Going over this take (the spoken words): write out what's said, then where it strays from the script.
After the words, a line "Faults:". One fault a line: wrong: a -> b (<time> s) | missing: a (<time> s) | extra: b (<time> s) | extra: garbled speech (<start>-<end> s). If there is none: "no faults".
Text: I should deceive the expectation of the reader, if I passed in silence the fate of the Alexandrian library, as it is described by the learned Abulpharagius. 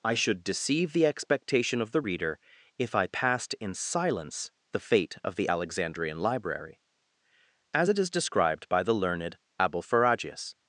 I should deceive the expectation of the reader, if I passed in silence the fate of the Alexandrian library, as it is described by the learned Abulpharagius.
Faults:
no faults